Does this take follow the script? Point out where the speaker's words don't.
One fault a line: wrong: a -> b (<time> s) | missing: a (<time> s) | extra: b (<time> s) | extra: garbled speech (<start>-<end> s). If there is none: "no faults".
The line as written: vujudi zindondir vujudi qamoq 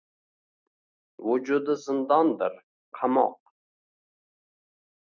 missing: vujudi (2.6 s)